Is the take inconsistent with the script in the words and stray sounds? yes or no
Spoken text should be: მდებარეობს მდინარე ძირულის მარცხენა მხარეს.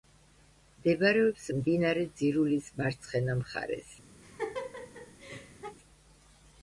yes